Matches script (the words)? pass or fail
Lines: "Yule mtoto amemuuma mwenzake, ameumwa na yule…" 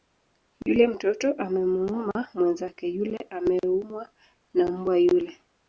fail